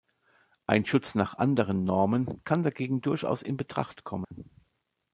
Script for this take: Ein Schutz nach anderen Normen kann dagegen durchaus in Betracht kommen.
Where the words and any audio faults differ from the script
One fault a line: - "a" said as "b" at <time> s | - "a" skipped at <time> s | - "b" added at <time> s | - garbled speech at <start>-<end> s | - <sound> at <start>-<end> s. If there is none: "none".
- dropout at 4.2-4.3 s